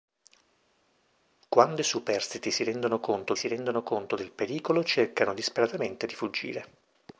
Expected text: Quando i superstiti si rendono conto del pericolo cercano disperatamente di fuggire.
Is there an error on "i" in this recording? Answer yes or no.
no